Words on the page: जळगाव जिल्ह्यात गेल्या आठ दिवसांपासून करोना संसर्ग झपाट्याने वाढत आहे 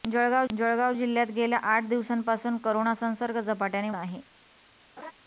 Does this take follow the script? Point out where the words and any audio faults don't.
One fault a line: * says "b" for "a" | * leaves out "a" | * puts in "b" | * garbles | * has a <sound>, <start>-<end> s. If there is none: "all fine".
* puts in "जळगाव"
* leaves out "वाढत"
* has a laugh, 5.0-5.1 s